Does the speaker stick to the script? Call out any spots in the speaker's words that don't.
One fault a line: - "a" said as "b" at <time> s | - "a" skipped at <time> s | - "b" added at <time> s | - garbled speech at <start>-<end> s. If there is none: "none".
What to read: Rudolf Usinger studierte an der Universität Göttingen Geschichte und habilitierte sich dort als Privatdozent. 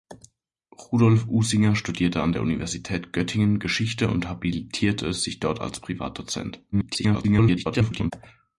- garbled speech at 6.7-8.1 s